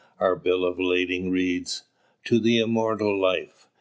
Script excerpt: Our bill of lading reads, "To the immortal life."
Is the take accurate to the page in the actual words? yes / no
yes